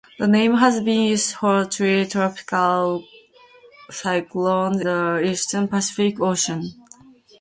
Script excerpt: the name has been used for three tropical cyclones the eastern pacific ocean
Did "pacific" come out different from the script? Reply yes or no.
no